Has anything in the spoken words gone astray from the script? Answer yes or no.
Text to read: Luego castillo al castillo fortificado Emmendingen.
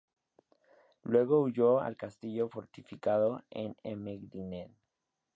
yes